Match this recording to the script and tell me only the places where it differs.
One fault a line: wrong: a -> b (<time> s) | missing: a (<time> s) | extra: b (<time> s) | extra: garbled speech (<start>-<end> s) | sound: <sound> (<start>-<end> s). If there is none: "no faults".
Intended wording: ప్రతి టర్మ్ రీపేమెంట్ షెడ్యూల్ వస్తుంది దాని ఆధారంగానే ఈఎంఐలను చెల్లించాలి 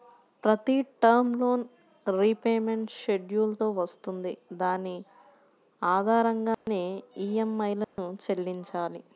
extra: లోన్ (1.4 s)
extra: తో (3.6 s)
sound: dropout (6.5-6.7 s)
sound: dropout (7.8-8.0 s)